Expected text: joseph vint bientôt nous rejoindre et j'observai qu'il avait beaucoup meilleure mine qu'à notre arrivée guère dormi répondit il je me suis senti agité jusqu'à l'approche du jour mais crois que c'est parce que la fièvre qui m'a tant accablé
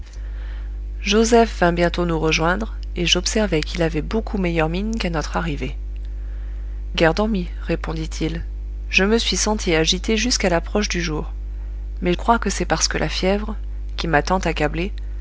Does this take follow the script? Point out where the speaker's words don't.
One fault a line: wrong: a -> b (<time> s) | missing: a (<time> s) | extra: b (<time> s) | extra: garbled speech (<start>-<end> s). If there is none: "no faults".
no faults